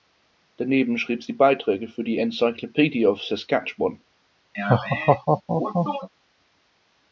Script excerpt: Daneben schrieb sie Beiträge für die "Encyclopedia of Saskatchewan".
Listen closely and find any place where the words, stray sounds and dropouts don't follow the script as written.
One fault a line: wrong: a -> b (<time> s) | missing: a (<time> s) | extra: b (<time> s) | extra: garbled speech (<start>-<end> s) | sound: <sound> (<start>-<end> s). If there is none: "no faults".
sound: laugh (4.5-6.1 s)